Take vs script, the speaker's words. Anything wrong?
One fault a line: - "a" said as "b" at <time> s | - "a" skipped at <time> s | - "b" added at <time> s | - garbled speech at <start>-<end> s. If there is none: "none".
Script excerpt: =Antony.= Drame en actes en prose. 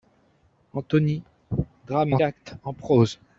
none